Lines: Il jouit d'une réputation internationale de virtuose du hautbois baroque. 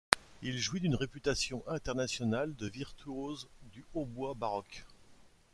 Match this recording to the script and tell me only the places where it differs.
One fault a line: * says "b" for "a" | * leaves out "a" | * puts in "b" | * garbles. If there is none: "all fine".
all fine